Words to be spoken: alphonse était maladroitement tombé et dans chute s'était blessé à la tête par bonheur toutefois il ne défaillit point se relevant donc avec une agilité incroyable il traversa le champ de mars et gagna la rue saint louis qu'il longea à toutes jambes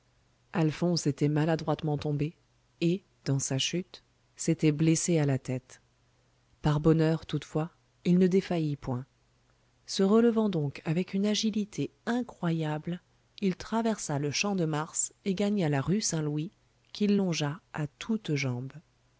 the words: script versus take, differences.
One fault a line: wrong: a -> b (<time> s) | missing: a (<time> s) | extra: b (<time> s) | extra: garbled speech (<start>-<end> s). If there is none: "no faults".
extra: sa (3.4 s)